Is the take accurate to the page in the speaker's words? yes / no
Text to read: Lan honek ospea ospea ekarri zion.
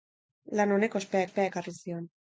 yes